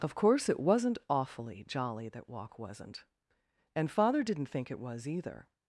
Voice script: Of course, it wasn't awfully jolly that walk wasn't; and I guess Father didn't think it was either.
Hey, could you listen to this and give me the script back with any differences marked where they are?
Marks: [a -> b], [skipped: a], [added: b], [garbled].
Of course, it wasn't awfully jolly that walk wasn't; and [skipped: I guess] Father didn't think it was either.